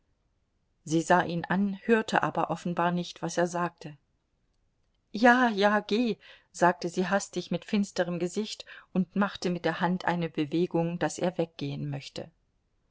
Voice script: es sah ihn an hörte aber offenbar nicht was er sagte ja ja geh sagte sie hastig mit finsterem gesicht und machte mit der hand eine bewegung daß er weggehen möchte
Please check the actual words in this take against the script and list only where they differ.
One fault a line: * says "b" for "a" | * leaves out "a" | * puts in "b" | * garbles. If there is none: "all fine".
* says "sie" for "es"